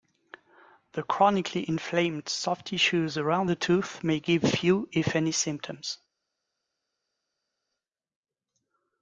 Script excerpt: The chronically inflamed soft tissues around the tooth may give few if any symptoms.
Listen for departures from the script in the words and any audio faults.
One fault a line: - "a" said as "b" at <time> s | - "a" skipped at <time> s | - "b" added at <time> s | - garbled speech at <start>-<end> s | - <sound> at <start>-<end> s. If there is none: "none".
none